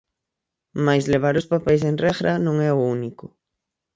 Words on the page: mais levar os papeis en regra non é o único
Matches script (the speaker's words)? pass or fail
pass